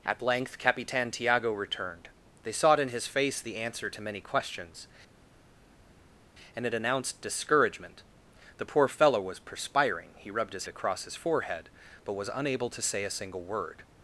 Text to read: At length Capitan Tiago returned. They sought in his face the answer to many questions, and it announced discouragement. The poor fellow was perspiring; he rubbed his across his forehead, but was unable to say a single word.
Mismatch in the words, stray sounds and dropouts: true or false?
false